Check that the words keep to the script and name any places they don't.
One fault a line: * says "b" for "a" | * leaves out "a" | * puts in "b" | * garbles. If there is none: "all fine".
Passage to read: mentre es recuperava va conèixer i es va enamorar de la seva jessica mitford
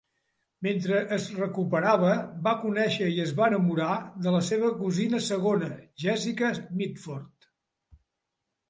* puts in "cosina segona"